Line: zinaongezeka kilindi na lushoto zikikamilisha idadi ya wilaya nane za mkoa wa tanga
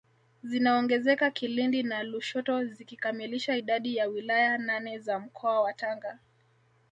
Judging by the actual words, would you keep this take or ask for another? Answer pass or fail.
pass